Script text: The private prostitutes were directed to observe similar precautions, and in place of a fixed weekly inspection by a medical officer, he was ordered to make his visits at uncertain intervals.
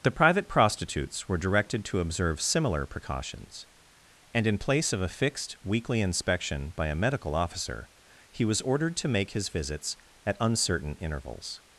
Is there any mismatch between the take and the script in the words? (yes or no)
no